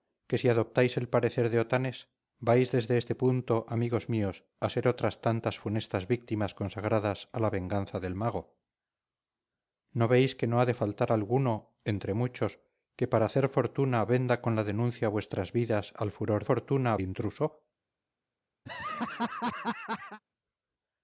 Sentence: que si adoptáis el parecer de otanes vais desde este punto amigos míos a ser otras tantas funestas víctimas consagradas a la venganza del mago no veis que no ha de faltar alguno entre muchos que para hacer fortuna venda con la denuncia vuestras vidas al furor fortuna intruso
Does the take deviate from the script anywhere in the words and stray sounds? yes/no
yes